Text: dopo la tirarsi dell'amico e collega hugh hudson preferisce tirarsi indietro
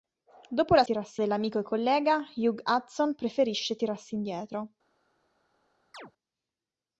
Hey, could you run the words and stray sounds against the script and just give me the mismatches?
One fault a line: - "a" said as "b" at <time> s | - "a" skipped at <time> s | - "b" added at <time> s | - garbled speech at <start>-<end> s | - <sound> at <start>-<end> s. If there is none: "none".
- chirp at 5.9-6.1 s